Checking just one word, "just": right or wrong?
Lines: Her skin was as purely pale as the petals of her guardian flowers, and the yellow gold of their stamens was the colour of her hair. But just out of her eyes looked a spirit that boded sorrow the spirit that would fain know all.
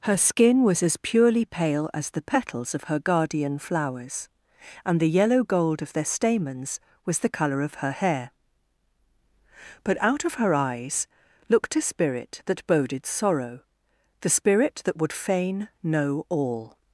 wrong